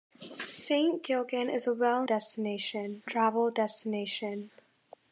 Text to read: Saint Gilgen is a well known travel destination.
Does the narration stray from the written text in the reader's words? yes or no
yes